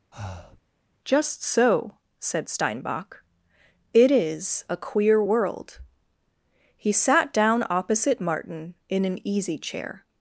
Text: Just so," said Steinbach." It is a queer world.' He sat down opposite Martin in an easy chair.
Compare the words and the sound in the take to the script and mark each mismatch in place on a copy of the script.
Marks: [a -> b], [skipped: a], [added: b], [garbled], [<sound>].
[breath] Just so," said Steinbach." It is a queer world.' He sat down opposite Martin in an easy chair.